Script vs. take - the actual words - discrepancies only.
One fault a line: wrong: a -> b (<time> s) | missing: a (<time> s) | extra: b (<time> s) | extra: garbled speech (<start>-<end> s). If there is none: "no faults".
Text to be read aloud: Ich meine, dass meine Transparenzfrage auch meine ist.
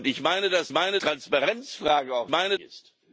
no faults